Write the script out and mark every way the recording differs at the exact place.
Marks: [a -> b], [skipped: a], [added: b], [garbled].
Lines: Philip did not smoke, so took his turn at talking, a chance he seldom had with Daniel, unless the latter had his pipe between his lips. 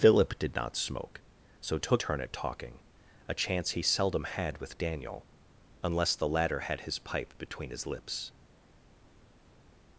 Philip did not smoke, so took [skipped: his] turn at talking, a chance he seldom had with Daniel, unless the latter had his pipe between his lips.